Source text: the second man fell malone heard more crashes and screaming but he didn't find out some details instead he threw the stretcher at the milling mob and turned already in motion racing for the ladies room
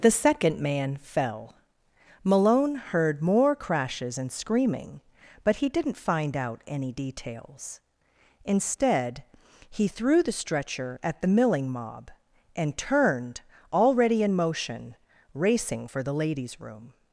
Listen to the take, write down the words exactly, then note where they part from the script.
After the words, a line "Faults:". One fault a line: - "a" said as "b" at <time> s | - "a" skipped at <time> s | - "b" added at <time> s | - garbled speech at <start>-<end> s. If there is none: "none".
the second man fell malone heard more crashes and screaming but he didn't find out any details instead he threw the stretcher at the milling mob and turned already in motion racing for the ladies room
Faults:
- "some" said as "any" at 6.6 s